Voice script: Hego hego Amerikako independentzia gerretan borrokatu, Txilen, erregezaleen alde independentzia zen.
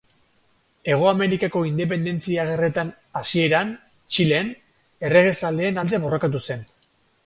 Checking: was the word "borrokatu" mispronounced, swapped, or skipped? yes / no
yes